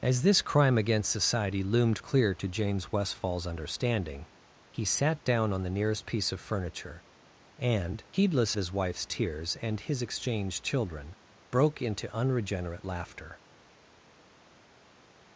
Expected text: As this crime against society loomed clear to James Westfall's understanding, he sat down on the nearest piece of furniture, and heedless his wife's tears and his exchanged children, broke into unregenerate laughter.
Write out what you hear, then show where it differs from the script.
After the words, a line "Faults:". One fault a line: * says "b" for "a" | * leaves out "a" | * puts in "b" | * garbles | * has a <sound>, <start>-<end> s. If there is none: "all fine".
As this crime against society loomed clear to James Westfall's understanding, he sat down on the nearest piece of furniture, and heedless his wife's tears and his exchanged children, broke into unregenerate laughter.
Faults:
all fine